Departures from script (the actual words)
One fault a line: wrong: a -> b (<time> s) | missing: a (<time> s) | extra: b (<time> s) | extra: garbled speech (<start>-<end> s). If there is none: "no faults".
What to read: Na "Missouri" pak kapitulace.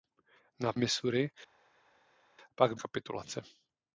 no faults